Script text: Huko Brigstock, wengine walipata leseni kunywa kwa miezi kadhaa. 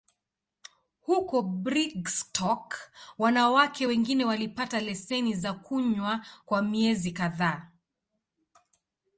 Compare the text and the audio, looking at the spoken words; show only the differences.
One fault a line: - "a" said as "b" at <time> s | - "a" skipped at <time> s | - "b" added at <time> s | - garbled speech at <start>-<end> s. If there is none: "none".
- "wanawake" added at 3.2 s
- "za" added at 5.3 s